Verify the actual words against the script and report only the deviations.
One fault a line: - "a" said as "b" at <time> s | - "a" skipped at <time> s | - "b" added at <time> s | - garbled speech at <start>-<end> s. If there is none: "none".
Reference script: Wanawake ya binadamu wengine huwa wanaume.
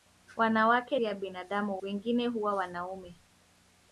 none